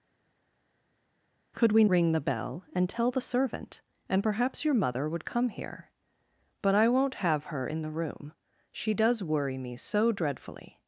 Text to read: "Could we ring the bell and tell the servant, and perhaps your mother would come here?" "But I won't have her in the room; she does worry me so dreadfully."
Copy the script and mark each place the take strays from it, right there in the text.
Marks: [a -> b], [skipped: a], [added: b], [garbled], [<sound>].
"Could we ring the bell and tell the servant, and perhaps your mother would come here?" "But I won't have her in the room; she does worry me so dreadfully."